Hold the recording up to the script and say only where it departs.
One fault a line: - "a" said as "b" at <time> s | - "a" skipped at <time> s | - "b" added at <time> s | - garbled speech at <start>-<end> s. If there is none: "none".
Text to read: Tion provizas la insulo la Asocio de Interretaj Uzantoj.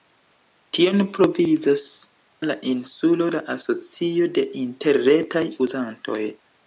none